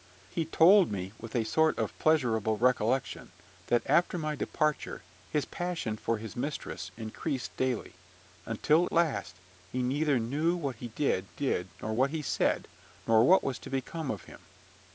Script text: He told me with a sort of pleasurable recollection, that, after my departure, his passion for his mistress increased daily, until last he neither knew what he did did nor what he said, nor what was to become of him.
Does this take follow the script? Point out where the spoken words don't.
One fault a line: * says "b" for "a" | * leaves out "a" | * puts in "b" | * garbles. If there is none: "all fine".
all fine